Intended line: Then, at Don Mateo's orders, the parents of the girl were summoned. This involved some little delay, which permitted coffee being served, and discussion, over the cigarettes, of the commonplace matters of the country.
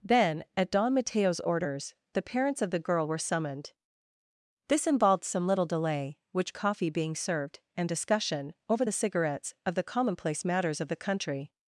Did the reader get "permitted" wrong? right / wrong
wrong